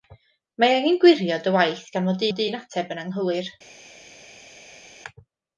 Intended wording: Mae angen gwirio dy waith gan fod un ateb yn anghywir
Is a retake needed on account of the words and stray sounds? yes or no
yes